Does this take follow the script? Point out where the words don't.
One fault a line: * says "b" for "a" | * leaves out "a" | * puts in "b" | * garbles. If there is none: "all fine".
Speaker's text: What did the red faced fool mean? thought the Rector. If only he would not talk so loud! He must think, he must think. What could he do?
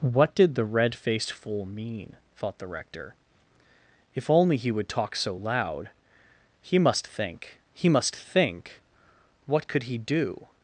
* leaves out "not"